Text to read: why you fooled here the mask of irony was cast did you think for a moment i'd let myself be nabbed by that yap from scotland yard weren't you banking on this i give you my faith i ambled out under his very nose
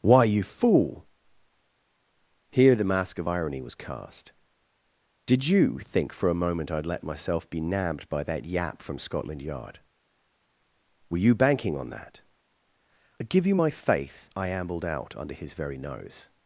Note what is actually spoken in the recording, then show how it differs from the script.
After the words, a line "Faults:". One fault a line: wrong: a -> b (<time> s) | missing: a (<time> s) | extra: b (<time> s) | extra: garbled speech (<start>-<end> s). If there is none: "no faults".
why you fool here the mask of irony was cast did you think for a moment i'd let myself be nabbed by that yap from scotland yard were you banking on that i give you my faith i ambled out under his very nose
Faults:
wrong: fooled -> fool (0.4 s)
wrong: weren't -> were (11.1 s)
wrong: this -> that (11.9 s)